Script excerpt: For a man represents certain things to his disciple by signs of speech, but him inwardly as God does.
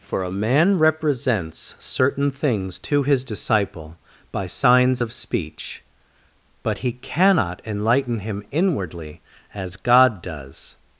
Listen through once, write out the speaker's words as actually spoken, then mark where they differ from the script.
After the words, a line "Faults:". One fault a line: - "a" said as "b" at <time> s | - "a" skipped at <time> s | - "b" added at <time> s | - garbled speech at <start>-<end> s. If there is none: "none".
For a man represents certain things to his disciple by signs of speech, but he cannot enlighten him inwardly as God does.
Faults:
- "he cannot enlighten" added at 6.8 s